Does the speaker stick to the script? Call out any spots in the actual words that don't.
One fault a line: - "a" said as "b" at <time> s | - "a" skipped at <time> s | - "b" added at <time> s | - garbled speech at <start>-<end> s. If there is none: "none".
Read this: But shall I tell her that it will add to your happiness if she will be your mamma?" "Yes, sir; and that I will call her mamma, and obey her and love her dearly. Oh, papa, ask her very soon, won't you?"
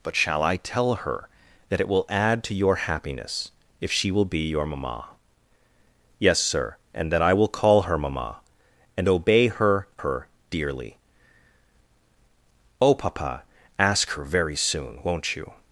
- "and love" skipped at 9.9 s